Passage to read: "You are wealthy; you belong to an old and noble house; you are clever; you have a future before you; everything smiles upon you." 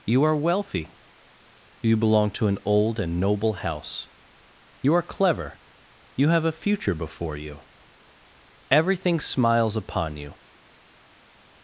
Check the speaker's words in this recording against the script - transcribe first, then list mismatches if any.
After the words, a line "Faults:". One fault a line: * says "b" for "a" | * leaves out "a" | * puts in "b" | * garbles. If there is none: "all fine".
"You are wealthy; you belong to an old and noble house; you are clever; you have a future before you; everything smiles upon you."
Faults:
all fine